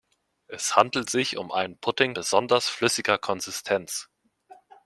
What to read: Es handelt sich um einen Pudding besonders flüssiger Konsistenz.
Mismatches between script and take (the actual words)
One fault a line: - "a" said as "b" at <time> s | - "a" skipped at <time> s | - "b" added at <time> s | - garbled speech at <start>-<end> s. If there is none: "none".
none